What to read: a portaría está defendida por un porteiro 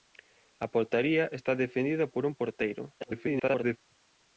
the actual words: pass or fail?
fail